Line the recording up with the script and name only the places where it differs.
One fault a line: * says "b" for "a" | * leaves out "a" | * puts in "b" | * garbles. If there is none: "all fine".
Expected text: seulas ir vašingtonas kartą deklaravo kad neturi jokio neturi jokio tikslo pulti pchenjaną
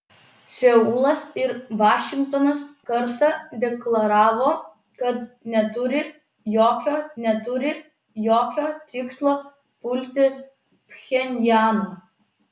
all fine